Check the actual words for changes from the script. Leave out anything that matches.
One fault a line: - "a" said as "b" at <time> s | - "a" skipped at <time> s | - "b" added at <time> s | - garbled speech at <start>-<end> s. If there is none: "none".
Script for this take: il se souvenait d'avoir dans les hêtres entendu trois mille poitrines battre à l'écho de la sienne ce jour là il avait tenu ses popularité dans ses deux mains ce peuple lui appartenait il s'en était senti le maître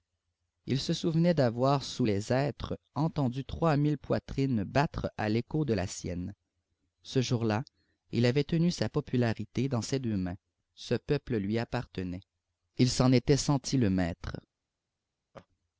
- "dans" said as "sous" at 1.8 s
- "ses" said as "sa" at 8.7 s